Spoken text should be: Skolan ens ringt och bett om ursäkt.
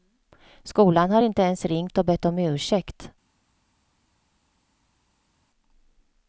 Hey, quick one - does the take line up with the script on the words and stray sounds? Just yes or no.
no